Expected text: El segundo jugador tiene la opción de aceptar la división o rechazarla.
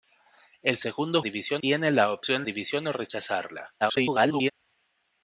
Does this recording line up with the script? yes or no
no